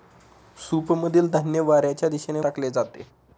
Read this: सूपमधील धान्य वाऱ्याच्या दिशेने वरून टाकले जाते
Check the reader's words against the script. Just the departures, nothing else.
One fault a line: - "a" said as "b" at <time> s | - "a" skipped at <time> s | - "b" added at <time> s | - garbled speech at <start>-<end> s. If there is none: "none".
- "वरून" skipped at 2.4 s